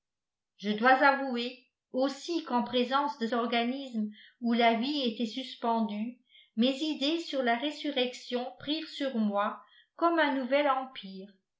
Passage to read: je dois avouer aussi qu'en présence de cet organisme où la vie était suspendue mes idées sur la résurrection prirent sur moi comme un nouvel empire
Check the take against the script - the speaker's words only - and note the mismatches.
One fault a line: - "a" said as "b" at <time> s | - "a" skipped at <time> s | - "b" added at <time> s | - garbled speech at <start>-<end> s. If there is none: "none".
- "cet" skipped at 3.3 s